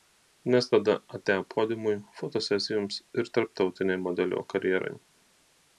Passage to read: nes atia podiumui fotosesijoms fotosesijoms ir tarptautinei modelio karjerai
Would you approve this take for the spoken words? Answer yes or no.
no